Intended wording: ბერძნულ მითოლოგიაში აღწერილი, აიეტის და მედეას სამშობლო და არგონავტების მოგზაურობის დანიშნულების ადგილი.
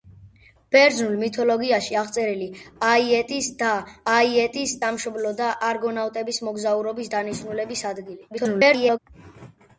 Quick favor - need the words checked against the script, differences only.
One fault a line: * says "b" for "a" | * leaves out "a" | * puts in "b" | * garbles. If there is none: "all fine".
* says "აიეტის" for "მედეას"
* garbles